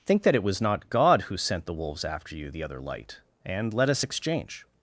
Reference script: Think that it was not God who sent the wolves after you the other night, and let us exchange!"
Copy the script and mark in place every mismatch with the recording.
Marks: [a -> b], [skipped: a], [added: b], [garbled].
Think that it was not God who sent the wolves after you the other [night, -> light] and let us exchange!"